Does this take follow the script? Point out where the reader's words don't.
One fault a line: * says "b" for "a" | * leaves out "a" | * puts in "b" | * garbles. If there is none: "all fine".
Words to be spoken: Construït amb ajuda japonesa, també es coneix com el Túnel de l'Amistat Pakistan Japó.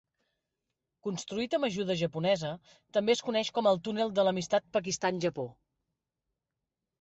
all fine